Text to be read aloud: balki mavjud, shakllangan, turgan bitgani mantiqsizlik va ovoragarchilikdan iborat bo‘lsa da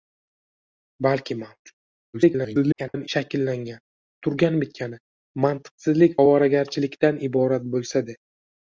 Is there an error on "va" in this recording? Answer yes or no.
yes